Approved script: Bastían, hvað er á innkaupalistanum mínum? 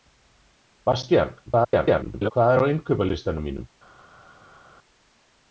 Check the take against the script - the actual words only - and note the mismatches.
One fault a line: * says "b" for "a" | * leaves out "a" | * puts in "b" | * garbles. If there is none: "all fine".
* garbles